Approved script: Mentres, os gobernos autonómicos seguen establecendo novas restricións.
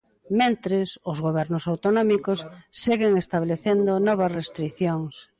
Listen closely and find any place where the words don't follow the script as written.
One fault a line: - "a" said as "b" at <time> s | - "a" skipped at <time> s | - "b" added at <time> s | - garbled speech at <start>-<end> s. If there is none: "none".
none